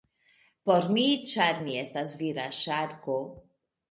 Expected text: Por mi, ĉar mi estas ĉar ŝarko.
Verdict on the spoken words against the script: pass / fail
fail